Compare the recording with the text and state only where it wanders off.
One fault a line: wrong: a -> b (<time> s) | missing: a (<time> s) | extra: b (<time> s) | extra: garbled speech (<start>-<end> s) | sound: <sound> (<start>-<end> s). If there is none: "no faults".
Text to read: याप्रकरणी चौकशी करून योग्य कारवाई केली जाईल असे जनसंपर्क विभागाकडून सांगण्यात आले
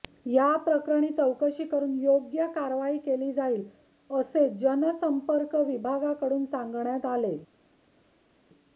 no faults